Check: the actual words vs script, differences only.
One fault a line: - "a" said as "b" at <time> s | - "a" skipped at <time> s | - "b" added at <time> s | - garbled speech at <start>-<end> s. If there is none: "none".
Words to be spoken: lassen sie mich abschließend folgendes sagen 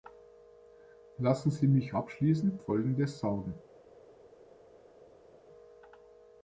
none